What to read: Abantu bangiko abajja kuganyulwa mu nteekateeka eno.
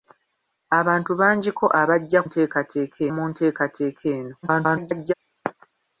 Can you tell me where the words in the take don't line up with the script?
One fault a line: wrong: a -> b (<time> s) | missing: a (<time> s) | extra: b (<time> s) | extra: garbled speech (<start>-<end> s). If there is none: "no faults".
wrong: kuganyulwa -> nteekateeka (2.2 s)
extra: garbled speech (4.4-5.1 s)